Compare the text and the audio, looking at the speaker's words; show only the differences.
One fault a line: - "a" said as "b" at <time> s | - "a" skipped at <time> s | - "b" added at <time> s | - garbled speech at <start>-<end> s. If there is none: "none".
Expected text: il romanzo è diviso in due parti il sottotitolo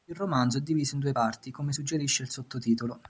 - "come suggerisce" added at 1.5 s